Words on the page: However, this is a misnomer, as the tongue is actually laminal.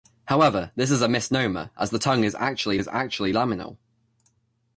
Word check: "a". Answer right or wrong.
right